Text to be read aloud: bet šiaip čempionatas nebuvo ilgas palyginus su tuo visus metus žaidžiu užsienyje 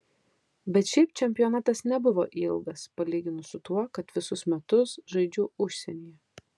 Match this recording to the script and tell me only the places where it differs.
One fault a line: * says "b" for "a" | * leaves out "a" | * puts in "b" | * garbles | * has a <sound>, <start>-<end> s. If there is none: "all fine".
* puts in "kad"